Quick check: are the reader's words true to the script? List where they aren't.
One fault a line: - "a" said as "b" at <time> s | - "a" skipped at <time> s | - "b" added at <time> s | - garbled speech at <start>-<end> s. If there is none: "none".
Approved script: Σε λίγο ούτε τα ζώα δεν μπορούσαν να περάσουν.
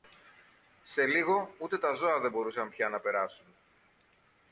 - "πια" added at 2.7 s